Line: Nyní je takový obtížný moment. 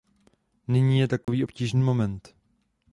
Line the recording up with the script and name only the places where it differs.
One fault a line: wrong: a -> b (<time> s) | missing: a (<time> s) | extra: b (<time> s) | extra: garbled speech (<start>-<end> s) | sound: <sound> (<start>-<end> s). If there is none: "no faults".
sound: dropout (1.2-1.3 s)